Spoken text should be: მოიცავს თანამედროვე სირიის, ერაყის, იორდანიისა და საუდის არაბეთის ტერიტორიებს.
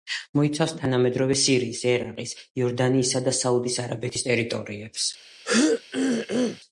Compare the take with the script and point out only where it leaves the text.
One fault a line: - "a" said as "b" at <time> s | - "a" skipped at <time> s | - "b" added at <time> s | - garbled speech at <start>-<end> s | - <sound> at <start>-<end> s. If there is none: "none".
- throat clearing at 5.4-6.6 s